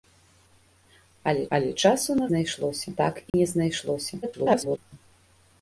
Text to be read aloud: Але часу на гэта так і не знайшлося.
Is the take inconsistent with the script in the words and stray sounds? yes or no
yes